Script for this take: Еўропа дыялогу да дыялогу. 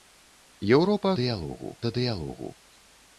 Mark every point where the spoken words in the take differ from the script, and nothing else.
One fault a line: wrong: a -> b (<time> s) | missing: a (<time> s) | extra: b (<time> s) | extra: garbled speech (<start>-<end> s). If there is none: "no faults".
no faults